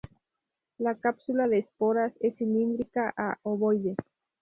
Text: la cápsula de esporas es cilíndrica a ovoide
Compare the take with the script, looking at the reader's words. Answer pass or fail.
pass